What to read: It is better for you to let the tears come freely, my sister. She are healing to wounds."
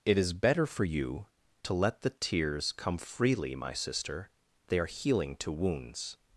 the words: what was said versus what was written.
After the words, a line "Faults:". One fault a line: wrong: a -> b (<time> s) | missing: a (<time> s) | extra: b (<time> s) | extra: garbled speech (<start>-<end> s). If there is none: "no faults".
It is better for you to let the tears come freely, my sister. They are healing to wounds."
Faults:
wrong: She -> They (4.7 s)